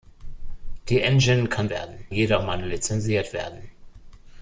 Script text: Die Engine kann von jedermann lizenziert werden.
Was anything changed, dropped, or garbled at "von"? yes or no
yes